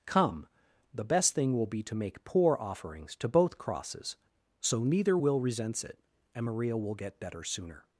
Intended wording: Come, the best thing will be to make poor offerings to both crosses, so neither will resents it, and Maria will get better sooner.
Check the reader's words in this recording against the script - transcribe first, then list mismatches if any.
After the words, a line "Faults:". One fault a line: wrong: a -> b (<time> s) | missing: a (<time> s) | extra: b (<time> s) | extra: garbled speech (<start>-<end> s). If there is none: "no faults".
Come, the best thing will be to make poor offerings to both crosses, so neither will resents it, and Maria will get better sooner.
Faults:
no faults